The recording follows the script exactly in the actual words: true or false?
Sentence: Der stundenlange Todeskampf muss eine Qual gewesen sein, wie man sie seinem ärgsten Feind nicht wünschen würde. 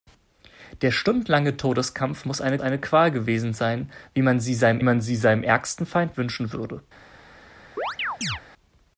false